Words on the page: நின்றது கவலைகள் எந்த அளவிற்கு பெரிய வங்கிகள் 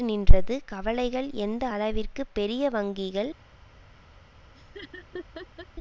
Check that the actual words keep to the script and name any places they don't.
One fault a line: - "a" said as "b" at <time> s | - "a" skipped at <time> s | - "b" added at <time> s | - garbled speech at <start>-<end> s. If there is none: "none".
none